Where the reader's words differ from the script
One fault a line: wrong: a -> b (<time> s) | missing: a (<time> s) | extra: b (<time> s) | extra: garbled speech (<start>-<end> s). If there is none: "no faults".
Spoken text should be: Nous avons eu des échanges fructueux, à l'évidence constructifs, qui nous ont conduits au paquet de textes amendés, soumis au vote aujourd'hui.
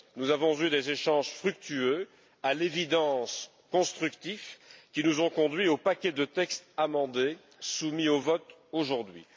no faults